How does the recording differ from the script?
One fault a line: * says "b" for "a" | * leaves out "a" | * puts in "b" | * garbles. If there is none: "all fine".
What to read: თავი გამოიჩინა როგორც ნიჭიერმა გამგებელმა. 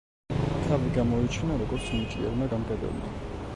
all fine